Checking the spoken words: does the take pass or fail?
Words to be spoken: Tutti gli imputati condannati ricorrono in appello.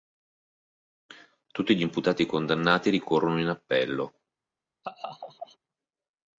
pass